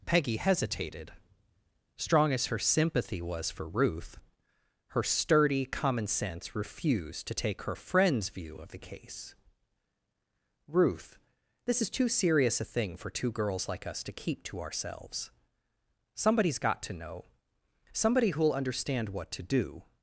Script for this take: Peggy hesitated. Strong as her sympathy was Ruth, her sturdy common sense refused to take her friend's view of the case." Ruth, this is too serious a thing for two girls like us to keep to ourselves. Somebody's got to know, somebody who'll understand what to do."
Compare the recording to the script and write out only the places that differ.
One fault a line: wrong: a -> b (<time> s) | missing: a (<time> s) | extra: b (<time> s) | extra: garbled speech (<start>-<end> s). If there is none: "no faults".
extra: for (3.5 s)